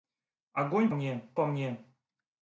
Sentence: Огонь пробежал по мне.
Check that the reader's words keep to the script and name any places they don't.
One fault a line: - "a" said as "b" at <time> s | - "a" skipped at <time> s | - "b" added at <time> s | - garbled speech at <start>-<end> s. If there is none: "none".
- "пробежал" said as "мне" at 0.9 s